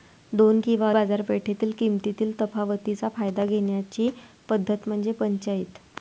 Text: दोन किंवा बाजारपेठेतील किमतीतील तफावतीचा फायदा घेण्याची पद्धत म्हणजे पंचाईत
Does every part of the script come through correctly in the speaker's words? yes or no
yes